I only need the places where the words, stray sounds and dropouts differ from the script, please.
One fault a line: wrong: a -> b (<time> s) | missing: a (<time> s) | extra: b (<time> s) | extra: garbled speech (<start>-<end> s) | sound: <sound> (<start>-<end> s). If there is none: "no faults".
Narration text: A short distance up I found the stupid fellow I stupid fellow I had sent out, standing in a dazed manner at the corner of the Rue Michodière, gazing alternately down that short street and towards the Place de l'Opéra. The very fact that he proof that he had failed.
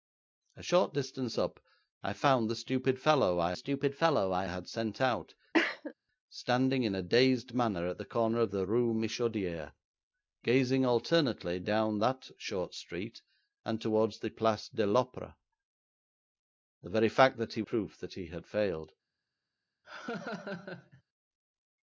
sound: cough (5.5-5.9 s)
sound: laugh (19.8-21.0 s)